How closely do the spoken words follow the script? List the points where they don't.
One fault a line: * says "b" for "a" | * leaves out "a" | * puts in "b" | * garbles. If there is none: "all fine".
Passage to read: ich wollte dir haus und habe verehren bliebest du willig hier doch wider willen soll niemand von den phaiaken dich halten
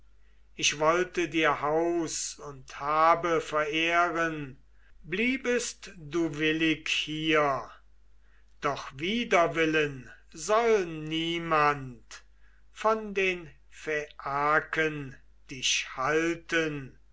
all fine